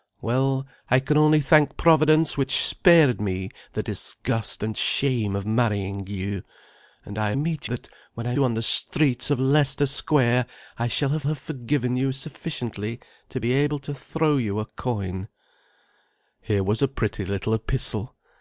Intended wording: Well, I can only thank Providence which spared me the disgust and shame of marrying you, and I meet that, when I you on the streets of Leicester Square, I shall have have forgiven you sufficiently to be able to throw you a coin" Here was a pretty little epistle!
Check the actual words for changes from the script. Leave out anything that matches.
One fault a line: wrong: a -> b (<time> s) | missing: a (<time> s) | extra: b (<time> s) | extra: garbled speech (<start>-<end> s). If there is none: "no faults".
no faults